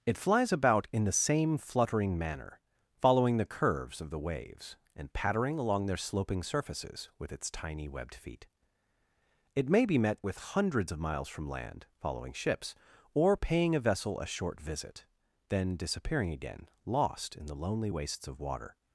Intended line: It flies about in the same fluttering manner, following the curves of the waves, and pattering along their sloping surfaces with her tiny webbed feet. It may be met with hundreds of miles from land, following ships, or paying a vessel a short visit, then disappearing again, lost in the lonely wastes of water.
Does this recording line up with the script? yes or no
no